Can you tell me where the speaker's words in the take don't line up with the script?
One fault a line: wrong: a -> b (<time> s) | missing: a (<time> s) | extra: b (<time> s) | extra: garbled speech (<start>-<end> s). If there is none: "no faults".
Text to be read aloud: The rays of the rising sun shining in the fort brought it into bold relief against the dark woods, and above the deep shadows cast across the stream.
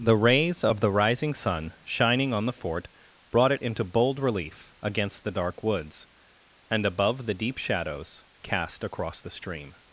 wrong: in -> on (2.3 s)